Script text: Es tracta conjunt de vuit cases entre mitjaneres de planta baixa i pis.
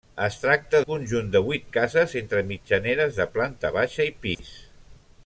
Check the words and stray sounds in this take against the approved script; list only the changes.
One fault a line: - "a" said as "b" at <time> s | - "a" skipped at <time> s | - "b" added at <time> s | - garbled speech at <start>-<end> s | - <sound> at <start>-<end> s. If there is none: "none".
- dropout at 4.3-4.4 s